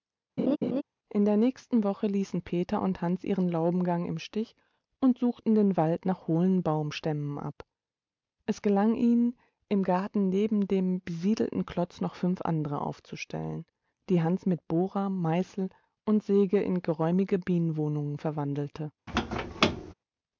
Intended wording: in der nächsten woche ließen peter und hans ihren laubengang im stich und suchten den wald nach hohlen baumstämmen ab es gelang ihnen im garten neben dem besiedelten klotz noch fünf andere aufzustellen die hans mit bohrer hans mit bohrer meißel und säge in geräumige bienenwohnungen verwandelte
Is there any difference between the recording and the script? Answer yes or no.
yes